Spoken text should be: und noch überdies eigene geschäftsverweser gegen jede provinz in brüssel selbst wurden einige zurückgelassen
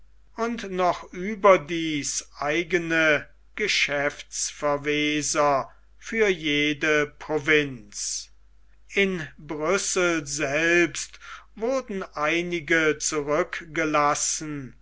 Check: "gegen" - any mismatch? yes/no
yes